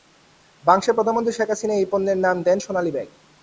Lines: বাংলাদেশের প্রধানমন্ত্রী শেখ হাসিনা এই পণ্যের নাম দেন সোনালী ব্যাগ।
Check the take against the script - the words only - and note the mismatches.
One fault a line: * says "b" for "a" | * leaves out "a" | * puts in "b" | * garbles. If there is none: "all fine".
all fine